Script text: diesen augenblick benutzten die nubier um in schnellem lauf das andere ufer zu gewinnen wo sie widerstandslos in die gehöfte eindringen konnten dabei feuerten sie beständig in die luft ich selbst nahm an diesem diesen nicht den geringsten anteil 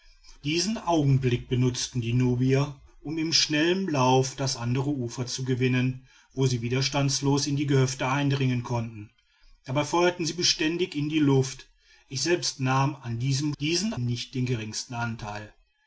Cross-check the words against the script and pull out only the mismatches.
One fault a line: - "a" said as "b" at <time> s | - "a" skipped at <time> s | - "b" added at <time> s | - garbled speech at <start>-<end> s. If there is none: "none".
none